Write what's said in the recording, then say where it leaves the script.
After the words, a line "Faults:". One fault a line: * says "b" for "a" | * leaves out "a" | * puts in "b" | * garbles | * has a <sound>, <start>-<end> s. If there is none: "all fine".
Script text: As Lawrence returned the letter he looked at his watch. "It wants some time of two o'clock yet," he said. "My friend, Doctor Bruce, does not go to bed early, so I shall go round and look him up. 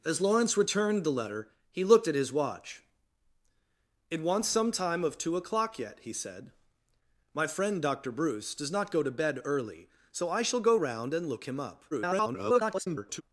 As Lawrence returned the letter he looked at his watch. "It wants some time of two o'clock yet," he said. "My friend, Doctor Bruce, does not go to bed early, so I shall go round and look him up. [garbled]
Faults:
* garbles